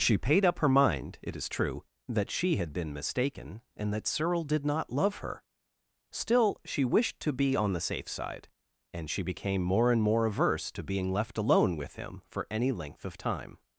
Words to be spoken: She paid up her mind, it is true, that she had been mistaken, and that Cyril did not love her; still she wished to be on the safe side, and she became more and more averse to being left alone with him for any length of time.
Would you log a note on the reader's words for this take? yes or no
no